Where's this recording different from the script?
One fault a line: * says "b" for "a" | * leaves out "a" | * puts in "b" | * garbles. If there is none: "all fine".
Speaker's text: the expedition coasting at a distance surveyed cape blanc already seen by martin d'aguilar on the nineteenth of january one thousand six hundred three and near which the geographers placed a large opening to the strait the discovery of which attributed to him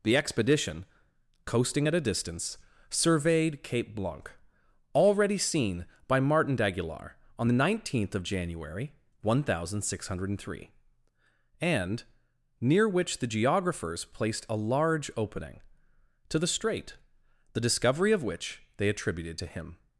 * puts in "they"